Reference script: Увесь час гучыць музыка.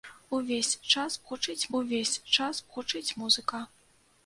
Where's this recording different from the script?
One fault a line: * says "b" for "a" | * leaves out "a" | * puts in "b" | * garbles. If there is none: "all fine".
* puts in "увесь час гучыць"